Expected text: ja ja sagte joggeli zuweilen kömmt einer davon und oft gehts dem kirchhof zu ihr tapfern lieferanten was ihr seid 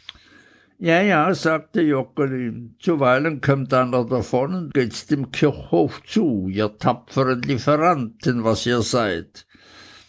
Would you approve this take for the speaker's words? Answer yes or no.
no